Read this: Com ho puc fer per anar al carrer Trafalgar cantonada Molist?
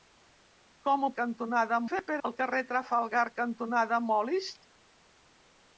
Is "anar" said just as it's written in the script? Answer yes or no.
no